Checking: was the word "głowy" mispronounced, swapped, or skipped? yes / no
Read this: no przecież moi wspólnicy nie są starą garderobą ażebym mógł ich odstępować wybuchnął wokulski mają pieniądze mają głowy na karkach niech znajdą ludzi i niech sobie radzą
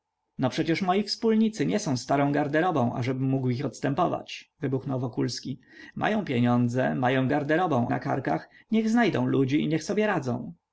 yes